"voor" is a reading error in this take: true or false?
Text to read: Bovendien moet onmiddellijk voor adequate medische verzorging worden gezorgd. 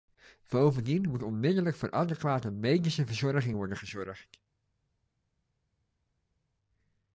false